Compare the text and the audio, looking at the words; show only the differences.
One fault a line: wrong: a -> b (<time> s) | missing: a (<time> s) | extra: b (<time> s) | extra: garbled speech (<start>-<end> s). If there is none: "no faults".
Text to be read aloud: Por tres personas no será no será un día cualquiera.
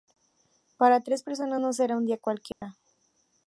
wrong: Por -> Para (0.8 s)
missing: no será (2.0 s)